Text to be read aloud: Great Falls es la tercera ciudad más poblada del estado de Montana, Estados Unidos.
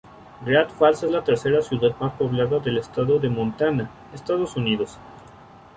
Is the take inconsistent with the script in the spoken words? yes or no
no